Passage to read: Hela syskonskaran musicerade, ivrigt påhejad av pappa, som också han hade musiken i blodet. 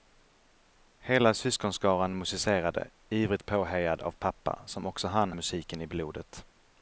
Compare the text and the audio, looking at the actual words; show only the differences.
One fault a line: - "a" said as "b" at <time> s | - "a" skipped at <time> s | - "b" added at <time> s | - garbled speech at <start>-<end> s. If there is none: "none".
- "hade" skipped at 5.3 s